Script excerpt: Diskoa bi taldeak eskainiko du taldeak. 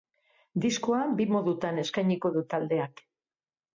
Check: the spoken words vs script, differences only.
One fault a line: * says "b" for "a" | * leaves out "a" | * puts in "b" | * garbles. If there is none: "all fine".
* says "modutan" for "taldeak"